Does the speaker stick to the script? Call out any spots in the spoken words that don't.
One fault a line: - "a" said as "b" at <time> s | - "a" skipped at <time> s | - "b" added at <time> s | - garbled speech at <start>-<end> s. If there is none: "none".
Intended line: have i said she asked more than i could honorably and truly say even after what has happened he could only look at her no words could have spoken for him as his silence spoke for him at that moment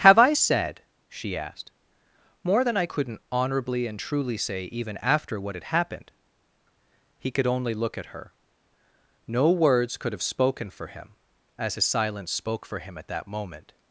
- "could" said as "couldn't" at 2.8 s
- "has" said as "had" at 5.5 s